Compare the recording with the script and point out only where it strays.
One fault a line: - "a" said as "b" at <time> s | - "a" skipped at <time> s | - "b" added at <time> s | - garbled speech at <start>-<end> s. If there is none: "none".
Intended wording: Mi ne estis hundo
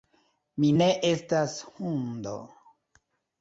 - "estis" said as "estas" at 1.1 s